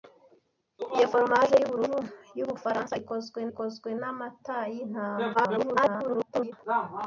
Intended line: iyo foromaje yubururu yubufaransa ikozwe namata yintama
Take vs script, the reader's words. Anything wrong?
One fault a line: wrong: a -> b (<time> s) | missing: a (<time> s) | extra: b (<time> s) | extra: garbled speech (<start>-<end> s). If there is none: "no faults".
extra: ikozwe (3.5 s)
extra: garbled speech (5.3-6.5 s)